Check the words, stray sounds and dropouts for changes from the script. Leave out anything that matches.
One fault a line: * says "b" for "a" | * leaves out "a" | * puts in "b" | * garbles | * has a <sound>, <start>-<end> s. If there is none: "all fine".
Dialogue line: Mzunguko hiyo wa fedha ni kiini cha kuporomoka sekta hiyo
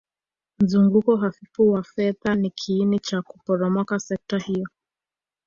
* says "hafifu" for "hiyo"